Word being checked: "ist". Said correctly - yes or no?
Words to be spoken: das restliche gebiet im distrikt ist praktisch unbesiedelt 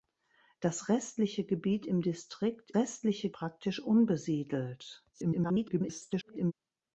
no